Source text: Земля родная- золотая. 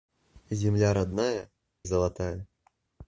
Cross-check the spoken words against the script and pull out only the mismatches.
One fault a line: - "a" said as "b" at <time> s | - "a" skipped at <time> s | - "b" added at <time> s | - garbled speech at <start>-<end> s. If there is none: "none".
none